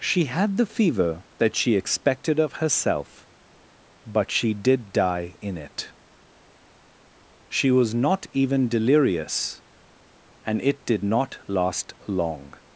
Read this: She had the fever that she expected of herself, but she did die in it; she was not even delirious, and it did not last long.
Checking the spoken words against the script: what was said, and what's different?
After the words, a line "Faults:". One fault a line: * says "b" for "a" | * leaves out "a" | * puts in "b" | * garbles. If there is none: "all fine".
She had the fever that she expected of herself, but she did die in it; she was not even delirious, and it did not last long.
Faults:
all fine